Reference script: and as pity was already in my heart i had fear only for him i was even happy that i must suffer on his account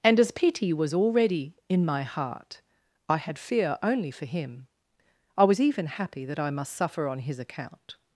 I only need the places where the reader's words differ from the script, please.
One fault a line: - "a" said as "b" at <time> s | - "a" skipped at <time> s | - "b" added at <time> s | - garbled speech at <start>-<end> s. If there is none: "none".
none